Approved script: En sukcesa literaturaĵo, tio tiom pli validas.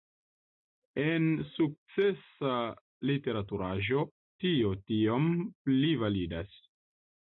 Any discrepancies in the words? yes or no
no